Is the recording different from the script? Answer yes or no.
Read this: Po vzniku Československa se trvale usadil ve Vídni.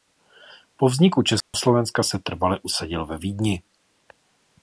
no